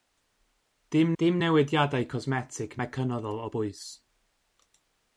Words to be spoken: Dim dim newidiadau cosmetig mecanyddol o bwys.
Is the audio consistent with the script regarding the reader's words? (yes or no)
yes